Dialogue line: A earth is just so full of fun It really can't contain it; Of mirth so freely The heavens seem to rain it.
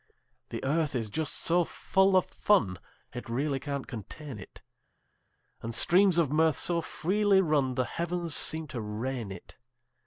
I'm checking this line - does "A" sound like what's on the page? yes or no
no